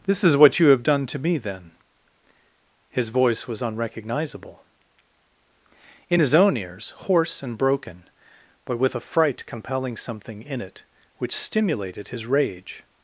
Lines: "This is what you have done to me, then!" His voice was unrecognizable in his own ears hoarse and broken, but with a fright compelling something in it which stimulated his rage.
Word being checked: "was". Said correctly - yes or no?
yes